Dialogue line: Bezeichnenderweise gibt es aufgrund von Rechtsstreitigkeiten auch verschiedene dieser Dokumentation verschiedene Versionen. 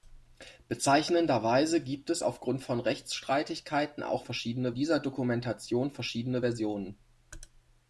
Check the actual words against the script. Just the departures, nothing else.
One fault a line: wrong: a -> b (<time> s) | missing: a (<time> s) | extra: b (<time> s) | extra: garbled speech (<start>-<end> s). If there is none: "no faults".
no faults